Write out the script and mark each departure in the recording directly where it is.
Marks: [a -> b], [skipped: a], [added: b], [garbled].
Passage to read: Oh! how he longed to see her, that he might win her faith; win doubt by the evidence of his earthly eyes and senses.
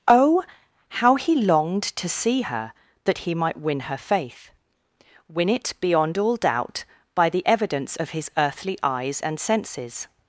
Oh! how he longed to see her, that he might win her faith; win [added: it beyond all] doubt by the evidence of his earthly eyes and senses.